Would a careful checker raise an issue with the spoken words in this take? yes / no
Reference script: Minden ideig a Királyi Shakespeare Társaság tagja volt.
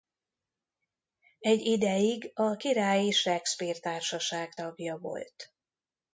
yes